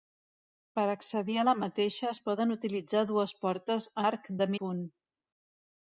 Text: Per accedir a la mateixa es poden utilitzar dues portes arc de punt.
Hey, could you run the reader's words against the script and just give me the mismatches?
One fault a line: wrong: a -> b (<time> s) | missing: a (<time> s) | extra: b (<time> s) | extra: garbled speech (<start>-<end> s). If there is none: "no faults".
no faults